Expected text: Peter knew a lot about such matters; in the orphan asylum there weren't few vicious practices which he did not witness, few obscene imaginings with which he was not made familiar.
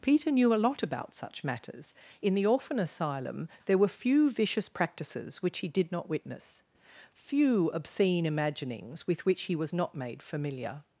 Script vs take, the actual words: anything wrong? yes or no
yes